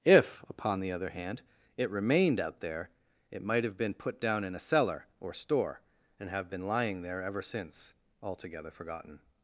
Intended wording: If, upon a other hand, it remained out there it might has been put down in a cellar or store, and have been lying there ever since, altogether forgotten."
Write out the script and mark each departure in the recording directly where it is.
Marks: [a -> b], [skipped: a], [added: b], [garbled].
If, upon [a -> the] other hand, it remained out there it might [has -> have] been put down in a cellar or store, and have been lying there ever since, altogether forgotten."